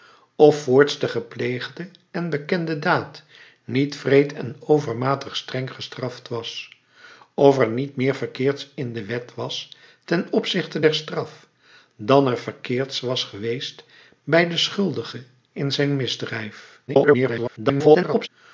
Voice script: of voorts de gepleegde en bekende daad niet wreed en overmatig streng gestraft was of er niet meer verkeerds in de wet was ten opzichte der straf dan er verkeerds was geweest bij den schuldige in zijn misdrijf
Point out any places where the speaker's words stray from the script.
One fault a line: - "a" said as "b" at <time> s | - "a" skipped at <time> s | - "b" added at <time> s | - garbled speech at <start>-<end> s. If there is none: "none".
- garbled speech at 16.9-18.3 s